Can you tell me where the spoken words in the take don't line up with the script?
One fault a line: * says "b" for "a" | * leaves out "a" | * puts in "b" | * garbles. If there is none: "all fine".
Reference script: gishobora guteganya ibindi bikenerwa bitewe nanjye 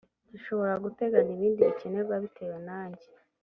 all fine